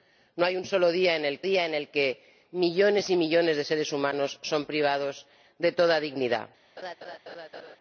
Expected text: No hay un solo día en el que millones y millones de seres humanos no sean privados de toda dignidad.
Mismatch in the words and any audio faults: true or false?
true